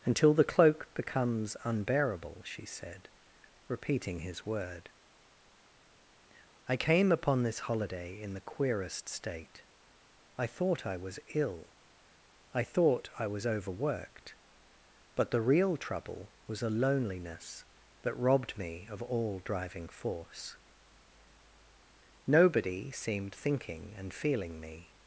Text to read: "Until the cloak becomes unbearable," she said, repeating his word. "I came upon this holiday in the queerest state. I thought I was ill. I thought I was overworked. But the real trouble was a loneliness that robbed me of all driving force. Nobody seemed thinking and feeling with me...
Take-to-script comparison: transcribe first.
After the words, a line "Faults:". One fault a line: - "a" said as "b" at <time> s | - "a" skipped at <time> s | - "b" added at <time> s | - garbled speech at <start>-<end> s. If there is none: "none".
"Until the cloak becomes unbearable," she said, repeating his word. "I came upon this holiday in the queerest state. I thought I was ill. I thought I was overworked. But the real trouble was a loneliness that robbed me of all driving force. Nobody seemed thinking and feeling me...
Faults:
- "with" skipped at 24.6 s